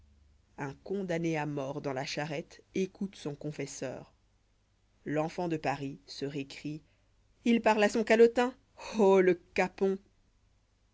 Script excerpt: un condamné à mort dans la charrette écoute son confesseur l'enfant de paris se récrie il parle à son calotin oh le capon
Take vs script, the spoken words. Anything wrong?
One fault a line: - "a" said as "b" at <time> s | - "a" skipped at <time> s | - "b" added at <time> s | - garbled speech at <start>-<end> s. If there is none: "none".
none